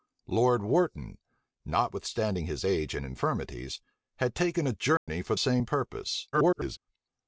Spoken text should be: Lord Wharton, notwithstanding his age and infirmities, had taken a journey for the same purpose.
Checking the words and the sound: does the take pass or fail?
fail